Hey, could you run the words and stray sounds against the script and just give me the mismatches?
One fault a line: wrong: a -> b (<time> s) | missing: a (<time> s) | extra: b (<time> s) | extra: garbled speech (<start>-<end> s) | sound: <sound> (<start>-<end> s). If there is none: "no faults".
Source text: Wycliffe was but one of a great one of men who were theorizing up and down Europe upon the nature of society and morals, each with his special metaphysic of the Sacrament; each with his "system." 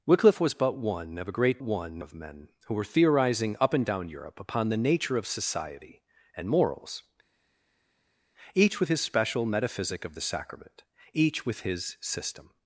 no faults